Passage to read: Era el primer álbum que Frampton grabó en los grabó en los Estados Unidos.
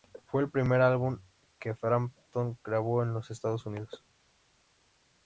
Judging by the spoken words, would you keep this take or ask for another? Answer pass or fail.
fail